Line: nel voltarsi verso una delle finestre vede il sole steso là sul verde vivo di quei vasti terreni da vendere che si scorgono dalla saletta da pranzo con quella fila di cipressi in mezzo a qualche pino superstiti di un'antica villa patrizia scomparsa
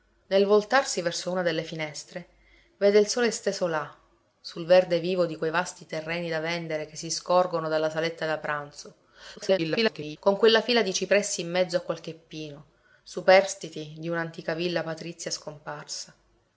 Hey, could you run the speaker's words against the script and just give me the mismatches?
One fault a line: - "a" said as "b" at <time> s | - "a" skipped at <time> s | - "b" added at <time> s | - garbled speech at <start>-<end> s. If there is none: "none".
- garbled speech at 9.4-10.2 s